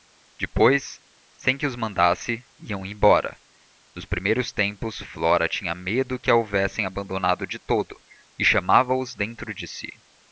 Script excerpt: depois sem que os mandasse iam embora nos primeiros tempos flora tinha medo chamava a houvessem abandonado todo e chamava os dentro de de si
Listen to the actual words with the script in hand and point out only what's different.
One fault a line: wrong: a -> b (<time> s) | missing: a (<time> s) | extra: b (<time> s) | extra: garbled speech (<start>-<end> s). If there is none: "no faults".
wrong: chamava -> que (6.2 s)
extra: de (7.5 s)
missing: de (9.7 s)